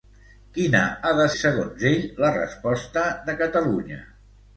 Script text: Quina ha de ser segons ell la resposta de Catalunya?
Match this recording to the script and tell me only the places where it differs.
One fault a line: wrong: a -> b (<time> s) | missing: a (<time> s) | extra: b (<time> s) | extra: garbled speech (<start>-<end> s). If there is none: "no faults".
missing: ser (1.3 s)